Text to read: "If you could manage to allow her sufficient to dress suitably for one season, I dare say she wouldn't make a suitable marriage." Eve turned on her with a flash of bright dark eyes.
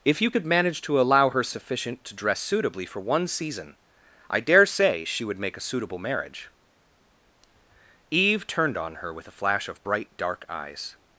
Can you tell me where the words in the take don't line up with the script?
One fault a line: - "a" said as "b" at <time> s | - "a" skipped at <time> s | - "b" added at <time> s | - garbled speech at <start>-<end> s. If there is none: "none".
- "wouldn't" said as "would" at 5.2 s